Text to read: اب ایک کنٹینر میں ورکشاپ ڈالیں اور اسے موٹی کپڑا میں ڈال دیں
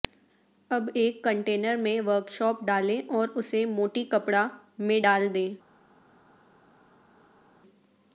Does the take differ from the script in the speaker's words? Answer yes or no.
no